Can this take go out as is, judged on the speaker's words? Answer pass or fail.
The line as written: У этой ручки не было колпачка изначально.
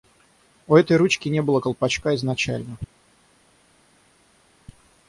pass